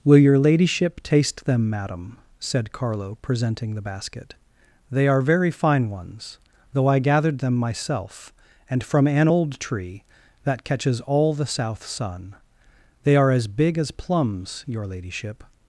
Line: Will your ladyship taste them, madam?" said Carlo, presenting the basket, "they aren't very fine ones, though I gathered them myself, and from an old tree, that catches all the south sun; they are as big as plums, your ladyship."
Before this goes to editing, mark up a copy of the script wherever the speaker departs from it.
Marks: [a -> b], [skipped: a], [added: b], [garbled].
Will your ladyship taste them, madam?" said Carlo, presenting the basket, "they [aren't -> are] very fine ones, though I gathered them myself, and from an old tree, that catches all the south sun; they are as big as plums, your ladyship."